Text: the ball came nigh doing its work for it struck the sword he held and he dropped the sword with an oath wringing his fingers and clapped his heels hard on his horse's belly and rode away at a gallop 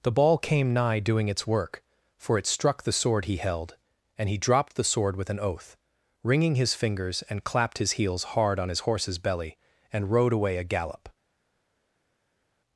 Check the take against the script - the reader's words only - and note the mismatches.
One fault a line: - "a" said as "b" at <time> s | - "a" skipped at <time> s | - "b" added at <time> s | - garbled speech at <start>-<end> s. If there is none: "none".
- "at" skipped at 10.6 s